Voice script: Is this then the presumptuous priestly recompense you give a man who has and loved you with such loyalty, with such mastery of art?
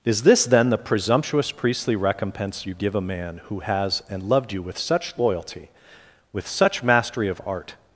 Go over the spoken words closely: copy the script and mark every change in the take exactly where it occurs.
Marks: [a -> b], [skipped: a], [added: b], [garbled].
Is this then the presumptuous priestly recompense you give a man who has and loved you with such loyalty, with such mastery of art?